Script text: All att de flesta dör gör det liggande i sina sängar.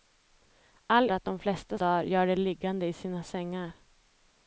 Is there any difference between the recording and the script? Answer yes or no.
no